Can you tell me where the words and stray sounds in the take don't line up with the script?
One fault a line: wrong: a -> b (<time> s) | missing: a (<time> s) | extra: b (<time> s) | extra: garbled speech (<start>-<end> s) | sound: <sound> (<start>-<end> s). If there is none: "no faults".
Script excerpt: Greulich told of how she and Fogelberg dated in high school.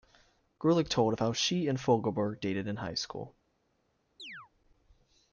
sound: chirp (4.2-4.5 s)